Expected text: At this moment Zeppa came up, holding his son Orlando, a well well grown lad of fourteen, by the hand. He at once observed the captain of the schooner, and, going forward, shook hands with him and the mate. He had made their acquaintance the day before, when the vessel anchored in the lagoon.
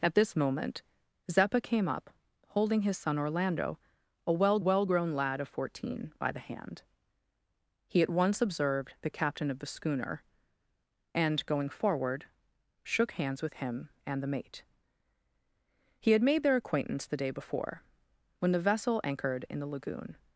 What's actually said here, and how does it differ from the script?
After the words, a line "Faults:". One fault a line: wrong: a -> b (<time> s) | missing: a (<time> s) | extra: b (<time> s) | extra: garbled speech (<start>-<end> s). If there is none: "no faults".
At this moment Zeppa came up, holding his son Orlando, a well well grown lad of fourteen, by the hand. He at once observed the captain of the schooner, and, going forward, shook hands with him and the mate. He had made their acquaintance the day before, when the vessel anchored in the lagoon.
Faults:
no faults